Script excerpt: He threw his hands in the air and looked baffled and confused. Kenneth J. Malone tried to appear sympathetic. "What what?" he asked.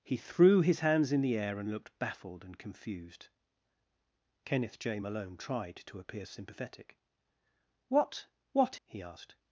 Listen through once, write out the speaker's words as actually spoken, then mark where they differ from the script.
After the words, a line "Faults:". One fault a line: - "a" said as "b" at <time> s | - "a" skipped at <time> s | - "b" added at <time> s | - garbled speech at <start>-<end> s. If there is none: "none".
He threw his hands in the air and looked baffled and confused. Kenneth J. Malone tried to appear sympathetic. "What what?" he asked.
Faults:
none